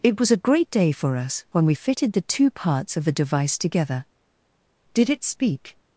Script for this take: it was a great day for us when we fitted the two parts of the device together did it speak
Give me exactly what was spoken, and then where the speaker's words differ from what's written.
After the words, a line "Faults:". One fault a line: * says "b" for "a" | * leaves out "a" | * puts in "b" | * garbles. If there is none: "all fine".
it was a great day for us when we fitted the two parts of the device together did it speak
Faults:
all fine